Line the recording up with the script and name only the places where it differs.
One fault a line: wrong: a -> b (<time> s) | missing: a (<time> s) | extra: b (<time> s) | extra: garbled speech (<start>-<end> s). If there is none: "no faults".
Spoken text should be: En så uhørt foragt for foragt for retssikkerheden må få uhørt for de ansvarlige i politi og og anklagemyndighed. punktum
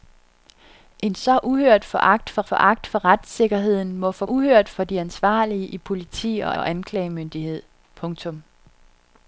no faults